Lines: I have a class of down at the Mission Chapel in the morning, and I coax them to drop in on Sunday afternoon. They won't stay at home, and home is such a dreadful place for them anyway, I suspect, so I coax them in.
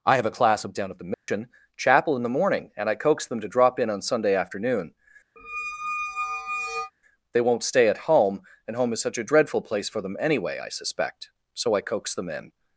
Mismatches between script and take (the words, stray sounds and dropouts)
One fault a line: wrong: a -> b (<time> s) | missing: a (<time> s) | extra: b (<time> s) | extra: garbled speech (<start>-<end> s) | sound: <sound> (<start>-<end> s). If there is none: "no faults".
sound: dropout (1.1-1.3 s)
sound: squeak (5.4-6.9 s)